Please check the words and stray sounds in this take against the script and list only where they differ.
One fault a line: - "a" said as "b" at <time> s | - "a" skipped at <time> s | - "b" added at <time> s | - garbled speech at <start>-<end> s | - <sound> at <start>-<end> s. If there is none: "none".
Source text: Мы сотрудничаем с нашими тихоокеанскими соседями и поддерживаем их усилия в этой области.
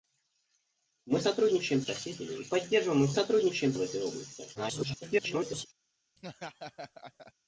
- "с нашими тихоокеанскими" skipped at 1.8 s
- "усилия" said as "сотрудничаем" at 3.1 s
- garbled speech at 4.5-5.7 s
- laugh at 6.2-7.3 s